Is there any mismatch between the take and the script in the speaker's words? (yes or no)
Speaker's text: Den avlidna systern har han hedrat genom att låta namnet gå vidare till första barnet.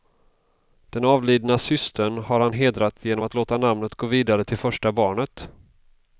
no